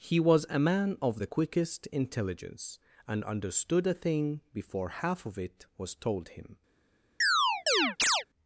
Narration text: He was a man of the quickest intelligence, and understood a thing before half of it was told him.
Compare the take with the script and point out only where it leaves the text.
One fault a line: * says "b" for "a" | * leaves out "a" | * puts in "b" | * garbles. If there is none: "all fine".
all fine